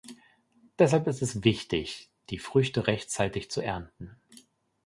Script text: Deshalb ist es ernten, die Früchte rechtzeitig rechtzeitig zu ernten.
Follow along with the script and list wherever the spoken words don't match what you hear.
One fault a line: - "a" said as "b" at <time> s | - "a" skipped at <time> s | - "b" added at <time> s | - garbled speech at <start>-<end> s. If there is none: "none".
- "ernten" said as "wichtig" at 1.4 s
- "rechtzeitig" skipped at 3.5 s